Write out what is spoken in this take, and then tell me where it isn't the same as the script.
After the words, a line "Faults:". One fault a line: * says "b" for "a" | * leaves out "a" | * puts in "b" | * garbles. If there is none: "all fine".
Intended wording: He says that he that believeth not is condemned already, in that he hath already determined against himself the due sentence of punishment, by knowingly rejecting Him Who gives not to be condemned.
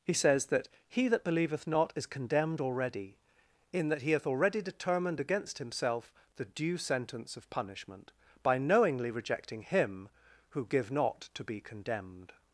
He says that he that believeth not is condemned already, in that he hath already determined against himself the due sentence of punishment, by knowingly rejecting Him Who give not to be condemned.
Faults:
* says "give" for "gives"